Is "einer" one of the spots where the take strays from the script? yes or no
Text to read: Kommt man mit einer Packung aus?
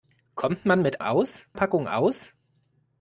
yes